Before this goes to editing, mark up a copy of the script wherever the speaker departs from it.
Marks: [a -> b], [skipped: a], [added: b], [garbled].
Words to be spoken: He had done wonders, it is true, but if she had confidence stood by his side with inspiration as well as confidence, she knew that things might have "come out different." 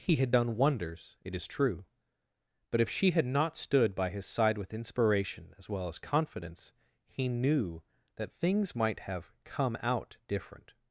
He had done wonders, it is true, but if she had [confidence -> not] stood by his side with inspiration as well as confidence, [she -> he] knew that things might have "come out different."